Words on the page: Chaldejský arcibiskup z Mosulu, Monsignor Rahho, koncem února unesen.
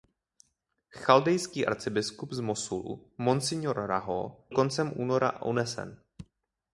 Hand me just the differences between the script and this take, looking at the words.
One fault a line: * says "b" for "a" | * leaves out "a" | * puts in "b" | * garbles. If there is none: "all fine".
all fine